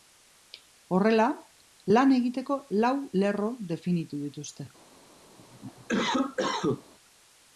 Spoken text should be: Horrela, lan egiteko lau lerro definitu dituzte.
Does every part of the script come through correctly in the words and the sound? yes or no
no